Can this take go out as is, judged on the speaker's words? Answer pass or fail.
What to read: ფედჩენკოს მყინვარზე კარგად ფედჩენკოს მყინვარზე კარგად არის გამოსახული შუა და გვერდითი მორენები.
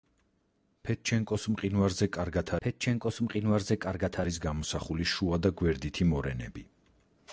pass